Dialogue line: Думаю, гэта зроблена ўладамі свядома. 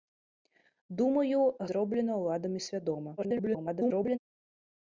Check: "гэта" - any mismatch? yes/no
yes